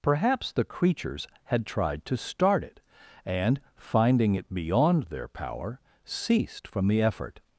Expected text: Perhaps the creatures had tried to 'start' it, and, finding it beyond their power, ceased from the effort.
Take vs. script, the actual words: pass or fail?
pass